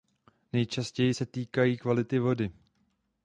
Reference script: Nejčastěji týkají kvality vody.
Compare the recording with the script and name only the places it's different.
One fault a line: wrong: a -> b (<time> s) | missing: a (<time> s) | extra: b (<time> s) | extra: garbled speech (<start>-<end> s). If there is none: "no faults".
extra: se (1.1 s)